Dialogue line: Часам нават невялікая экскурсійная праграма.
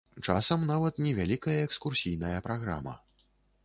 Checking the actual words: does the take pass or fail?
pass